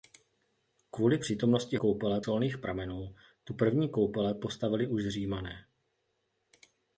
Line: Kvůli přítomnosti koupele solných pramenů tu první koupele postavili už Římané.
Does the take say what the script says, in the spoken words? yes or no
yes